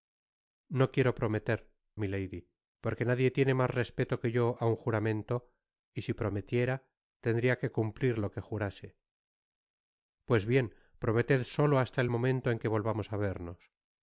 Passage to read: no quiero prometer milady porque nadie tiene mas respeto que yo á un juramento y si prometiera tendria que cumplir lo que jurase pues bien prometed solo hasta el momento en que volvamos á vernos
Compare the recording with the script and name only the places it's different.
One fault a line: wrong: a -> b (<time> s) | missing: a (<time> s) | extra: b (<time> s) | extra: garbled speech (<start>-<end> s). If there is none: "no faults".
no faults